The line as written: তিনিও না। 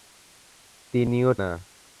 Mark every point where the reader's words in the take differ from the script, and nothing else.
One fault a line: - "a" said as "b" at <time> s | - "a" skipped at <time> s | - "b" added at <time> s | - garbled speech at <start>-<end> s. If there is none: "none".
none